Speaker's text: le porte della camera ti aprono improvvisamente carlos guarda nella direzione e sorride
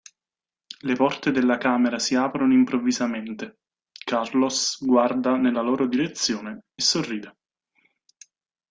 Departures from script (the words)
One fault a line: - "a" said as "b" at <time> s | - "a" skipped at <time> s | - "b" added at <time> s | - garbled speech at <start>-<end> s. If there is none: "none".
- "ti" said as "si" at 2.0 s
- "loro" added at 5.6 s